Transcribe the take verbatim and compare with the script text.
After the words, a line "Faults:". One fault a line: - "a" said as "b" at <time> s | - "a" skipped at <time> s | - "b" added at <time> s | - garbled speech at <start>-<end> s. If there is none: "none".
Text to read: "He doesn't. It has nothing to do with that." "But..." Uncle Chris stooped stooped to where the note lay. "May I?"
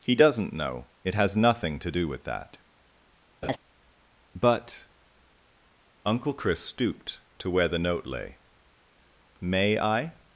"He doesn't know. It has nothing to do with that." "But..." Uncle Chris stooped to where the note lay. "May I?"
Faults:
- "know" added at 0.5 s
- "stooped" skipped at 7.2 s